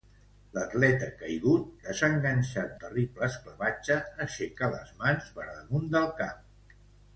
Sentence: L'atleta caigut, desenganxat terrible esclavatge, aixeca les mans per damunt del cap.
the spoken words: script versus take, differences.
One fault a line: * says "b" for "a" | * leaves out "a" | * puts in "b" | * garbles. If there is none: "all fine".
all fine